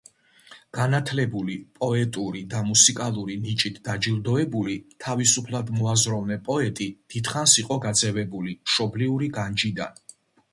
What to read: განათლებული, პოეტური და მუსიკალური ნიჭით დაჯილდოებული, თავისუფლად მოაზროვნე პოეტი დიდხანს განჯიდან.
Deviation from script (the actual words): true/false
true